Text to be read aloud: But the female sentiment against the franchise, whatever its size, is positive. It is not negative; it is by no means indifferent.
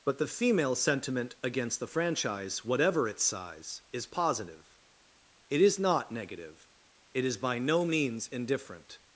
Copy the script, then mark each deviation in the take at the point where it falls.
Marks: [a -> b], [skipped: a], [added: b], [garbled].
But the female sentiment against the franchise, whatever its size, is positive. It is not negative; it is by no means indifferent.